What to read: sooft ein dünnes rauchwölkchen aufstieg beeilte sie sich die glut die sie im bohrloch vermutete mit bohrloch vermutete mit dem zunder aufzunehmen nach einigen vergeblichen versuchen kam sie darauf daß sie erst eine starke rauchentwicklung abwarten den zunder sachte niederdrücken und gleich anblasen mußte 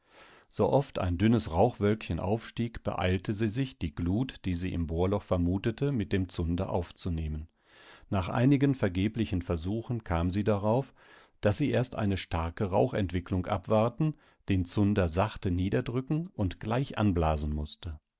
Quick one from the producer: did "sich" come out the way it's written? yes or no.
yes